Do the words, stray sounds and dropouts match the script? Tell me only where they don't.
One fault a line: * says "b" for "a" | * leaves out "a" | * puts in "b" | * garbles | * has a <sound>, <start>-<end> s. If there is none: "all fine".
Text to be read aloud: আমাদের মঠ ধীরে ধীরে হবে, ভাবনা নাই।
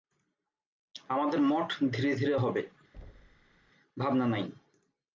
* has a thud, 2.9-3.7 s